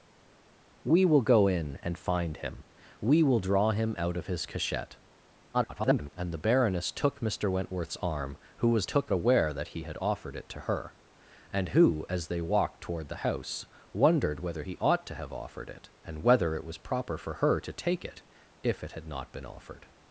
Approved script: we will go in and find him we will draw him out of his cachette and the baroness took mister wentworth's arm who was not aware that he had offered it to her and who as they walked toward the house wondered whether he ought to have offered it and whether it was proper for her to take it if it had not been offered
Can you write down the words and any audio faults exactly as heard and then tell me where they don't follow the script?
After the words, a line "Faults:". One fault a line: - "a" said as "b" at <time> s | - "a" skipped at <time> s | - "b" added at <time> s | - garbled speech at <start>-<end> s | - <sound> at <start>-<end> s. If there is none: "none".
we will go in and find him we will draw him out of his cachette [garbled] and the baroness took mister wentworth's arm who was took aware that he had offered it to her and who as they walked toward the house wondered whether he ought to have offered it and whether it was proper for her to take it if it had not been offered
Faults:
- garbled speech at 5.5-6.1 s
- "not" said as "took" at 8.8 s